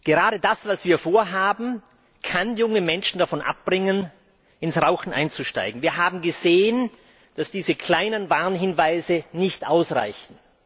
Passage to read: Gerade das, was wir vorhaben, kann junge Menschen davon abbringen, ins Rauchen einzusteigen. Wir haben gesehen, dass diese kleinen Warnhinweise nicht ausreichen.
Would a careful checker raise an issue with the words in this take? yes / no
no